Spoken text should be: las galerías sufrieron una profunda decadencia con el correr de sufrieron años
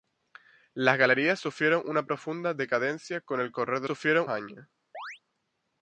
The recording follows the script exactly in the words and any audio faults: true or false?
false